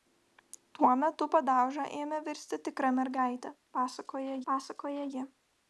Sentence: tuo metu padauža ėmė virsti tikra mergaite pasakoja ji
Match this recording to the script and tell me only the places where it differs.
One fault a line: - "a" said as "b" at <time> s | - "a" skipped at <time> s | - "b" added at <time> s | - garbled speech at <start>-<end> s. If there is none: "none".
- "pasakoja" added at 4.5 s